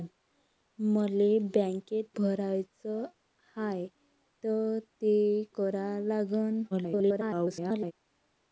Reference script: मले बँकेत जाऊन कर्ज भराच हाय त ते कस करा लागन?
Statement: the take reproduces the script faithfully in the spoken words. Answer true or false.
false